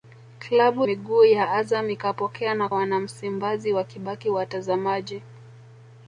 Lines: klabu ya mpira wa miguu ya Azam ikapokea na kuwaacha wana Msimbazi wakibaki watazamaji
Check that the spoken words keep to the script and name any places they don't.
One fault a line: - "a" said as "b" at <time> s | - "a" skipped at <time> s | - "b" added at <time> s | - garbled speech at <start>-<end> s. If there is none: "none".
- "ya mpira wa" skipped at 0.9 s
- "kuwaacha" skipped at 2.7 s